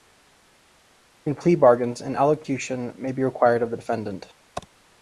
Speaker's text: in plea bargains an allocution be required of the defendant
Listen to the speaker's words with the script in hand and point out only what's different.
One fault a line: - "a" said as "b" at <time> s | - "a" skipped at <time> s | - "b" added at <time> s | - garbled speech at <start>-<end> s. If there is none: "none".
- "may" added at 3.0 s